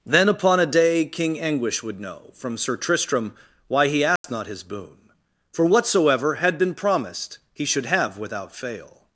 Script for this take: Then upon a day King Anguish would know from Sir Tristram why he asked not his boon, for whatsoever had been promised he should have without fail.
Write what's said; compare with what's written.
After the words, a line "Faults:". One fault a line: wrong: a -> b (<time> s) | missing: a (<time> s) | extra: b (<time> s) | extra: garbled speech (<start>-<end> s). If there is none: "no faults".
Then upon a day King Anguish would know from Sir Tristram why he asked not his boon, for whatsoever had been promised he should have without fail.
Faults:
no faults